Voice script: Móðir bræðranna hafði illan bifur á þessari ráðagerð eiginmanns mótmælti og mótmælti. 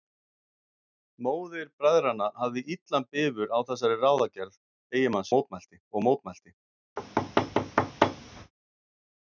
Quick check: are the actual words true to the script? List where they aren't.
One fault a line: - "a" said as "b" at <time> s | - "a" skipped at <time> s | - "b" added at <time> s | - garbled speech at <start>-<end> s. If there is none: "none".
none